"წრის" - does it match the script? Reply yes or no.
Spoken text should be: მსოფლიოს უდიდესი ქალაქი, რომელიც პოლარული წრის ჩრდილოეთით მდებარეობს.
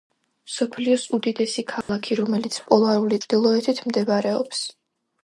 no